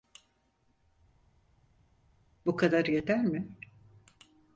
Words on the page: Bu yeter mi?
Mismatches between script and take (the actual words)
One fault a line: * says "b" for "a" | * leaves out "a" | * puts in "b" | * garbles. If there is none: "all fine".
* puts in "kadarı"